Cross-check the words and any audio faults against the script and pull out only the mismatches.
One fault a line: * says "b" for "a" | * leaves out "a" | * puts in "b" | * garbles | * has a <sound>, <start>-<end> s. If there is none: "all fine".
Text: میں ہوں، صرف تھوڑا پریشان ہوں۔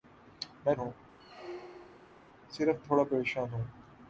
* has a squeak, 1.2-2.2 s